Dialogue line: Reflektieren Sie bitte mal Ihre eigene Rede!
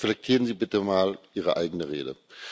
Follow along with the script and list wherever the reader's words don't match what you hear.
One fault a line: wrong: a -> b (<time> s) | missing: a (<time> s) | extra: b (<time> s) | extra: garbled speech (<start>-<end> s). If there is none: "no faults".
no faults